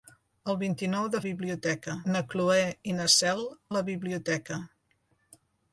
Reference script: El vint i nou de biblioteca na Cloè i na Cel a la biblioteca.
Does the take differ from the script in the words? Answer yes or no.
no